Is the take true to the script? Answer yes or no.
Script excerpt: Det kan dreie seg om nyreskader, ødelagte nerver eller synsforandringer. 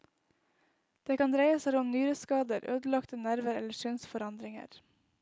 yes